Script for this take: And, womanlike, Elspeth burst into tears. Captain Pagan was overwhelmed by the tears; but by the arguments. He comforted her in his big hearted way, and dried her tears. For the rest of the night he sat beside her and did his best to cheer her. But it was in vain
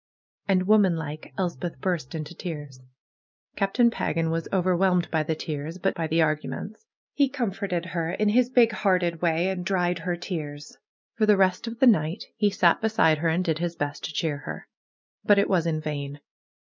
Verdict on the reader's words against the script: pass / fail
pass